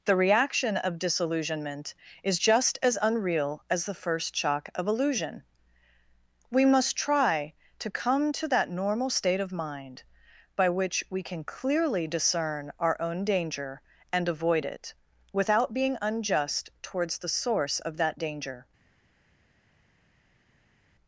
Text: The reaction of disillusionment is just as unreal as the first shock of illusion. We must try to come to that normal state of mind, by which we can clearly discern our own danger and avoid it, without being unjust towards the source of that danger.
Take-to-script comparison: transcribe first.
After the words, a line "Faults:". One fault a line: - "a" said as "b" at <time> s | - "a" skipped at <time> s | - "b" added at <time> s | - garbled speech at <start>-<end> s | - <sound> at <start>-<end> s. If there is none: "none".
The reaction of disillusionment is just as unreal as the first shock of illusion. We must try to come to that normal state of mind, by which we can clearly discern our own danger and avoid it, without being unjust towards the source of that danger.
Faults:
none